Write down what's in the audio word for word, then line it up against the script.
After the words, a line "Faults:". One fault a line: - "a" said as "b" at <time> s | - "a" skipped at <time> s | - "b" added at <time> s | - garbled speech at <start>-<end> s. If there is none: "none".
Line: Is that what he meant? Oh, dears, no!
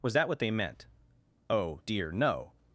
Was that what they meant? Oh, dear, no!
Faults:
- "Is" said as "Was" at 0.0 s
- "he" said as "they" at 0.4 s
- "dears" said as "dear" at 1.9 s